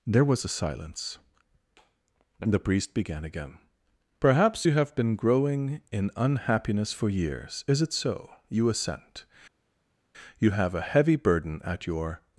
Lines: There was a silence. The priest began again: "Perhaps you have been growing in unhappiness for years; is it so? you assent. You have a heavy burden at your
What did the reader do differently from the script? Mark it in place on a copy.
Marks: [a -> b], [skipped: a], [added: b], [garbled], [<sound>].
There was a silence. The priest began again: "Perhaps you have been growing in unhappiness for years; is it so? you assent. You have a heavy burden at your